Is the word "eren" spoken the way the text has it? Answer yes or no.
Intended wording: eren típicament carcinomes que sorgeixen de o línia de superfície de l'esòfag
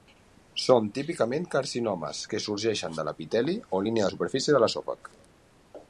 no